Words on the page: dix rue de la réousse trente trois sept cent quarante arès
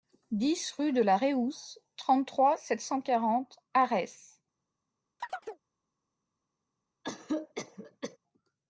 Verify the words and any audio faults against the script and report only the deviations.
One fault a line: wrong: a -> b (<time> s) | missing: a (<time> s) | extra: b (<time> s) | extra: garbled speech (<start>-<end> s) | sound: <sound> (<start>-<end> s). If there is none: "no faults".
sound: chirp (5.2-5.6 s)
sound: cough (7.0-8.2 s)